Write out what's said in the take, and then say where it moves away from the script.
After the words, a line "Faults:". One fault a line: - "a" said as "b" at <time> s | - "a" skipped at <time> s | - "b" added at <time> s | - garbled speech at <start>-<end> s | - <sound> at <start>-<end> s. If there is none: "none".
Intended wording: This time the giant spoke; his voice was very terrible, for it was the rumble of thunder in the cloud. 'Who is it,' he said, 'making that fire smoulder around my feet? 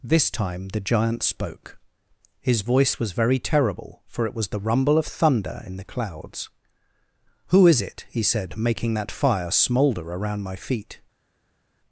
This time the giant spoke; his voice was very terrible, for it was the rumble of thunder in the clouds. 'Who is it,' he said, 'making that fire smoulder around my feet?
Faults:
- "cloud" said as "clouds" at 5.8 s